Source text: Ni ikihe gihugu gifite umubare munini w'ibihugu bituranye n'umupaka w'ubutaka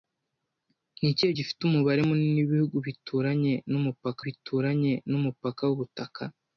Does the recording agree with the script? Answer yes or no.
no